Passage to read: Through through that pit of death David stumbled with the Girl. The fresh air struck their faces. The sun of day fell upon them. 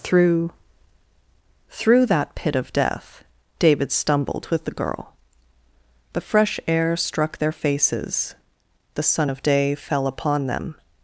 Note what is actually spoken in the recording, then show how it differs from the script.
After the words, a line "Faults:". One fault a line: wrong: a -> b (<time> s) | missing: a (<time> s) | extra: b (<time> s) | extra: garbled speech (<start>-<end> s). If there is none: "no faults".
Through through that pit of death David stumbled with the Girl. The fresh air struck their faces. The sun of day fell upon them.
Faults:
no faults